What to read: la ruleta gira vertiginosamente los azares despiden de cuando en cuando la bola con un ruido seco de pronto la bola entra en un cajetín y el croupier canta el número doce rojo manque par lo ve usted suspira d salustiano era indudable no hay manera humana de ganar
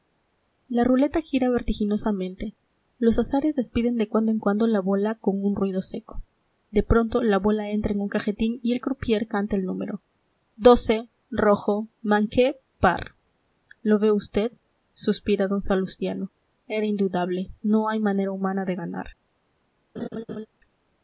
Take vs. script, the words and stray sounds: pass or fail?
fail